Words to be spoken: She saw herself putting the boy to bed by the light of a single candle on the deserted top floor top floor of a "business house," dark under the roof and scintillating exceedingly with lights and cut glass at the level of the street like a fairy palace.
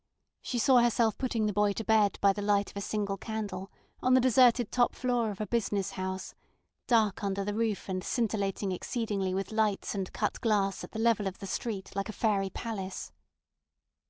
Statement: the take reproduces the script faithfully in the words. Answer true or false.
false